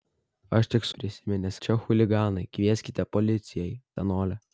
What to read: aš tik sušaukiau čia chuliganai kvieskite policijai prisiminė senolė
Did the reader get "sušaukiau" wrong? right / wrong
wrong